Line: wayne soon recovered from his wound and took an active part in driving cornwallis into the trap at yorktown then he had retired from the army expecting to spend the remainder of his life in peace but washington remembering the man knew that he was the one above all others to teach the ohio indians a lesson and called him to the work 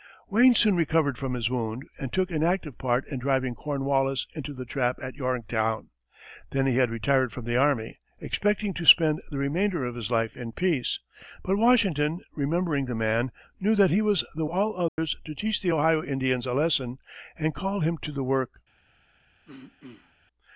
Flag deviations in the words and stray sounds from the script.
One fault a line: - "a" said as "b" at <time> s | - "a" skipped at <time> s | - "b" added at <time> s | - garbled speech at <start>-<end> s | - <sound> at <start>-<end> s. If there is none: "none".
- "one above" skipped at 14.5 s
- dropout at 14.9-15.0 s
- throat clearing at 19.5-20.1 s